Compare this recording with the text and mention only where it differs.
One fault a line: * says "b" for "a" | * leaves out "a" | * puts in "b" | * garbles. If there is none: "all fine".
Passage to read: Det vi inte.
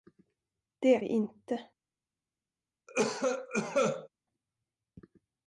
all fine